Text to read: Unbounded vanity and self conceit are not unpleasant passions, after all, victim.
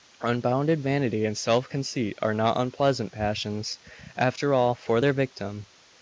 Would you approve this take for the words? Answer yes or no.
no